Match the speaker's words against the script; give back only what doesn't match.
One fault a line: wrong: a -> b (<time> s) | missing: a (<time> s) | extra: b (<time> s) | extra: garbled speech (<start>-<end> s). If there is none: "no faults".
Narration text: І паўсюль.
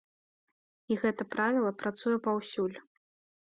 extra: гэта правіла працуе (1.0 s)